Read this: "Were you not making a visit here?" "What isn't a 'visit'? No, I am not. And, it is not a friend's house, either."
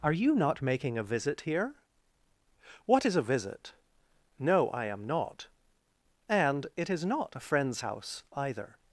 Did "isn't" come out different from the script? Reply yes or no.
yes